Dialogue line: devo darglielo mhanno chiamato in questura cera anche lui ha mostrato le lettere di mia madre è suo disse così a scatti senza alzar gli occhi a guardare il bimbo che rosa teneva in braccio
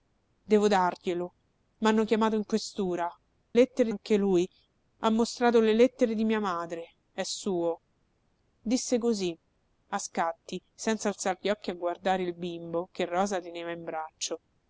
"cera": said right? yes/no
no